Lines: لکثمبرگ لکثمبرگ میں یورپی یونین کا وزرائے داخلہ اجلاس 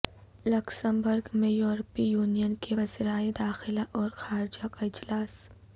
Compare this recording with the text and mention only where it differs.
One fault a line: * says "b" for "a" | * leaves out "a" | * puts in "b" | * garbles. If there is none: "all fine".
* leaves out "لکثمبرگ"
* says "کے" for "کا"
* puts in "اور خارجہ کا"